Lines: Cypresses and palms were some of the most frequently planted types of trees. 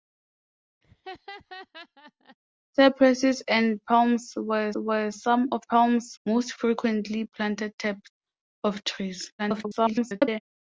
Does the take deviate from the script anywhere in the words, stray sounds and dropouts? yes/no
yes